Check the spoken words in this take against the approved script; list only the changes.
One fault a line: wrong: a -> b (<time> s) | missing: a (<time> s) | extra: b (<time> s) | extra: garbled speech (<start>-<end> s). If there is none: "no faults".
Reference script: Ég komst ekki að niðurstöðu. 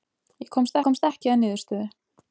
extra: komst (0.8 s)